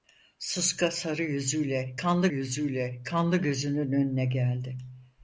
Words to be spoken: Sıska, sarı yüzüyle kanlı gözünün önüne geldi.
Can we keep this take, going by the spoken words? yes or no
no